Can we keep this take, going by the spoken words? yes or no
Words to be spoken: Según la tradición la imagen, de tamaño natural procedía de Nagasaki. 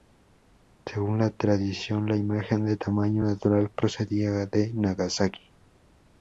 yes